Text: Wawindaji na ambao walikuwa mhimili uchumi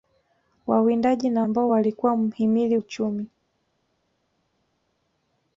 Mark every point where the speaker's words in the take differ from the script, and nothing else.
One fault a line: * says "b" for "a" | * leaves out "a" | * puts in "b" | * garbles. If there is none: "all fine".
all fine